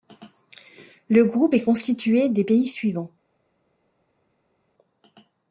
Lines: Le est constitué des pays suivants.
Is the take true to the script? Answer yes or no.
no